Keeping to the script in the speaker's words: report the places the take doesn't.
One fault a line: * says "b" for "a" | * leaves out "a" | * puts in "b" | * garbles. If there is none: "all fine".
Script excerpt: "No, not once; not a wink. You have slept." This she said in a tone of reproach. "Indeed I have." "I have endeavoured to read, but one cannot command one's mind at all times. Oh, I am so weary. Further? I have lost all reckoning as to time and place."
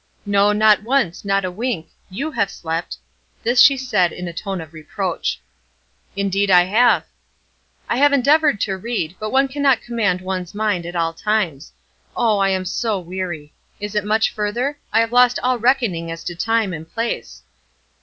* puts in "Is it much"